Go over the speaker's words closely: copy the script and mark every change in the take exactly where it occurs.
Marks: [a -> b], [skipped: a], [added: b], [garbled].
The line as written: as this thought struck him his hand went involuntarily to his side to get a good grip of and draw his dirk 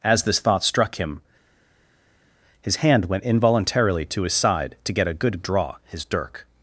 as this thought struck him his hand went involuntarily to his side to get a good [skipped: grip of and] draw his dirk